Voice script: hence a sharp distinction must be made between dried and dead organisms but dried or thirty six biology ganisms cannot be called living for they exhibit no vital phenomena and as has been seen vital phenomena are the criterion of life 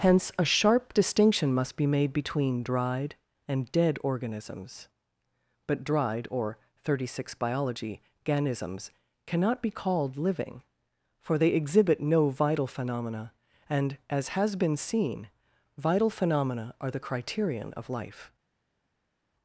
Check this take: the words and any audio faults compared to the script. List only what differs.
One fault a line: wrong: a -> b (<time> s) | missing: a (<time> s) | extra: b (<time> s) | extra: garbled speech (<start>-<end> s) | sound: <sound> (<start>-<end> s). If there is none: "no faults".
no faults